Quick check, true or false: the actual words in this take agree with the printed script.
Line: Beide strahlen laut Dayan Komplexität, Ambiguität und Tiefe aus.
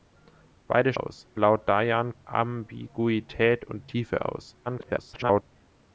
false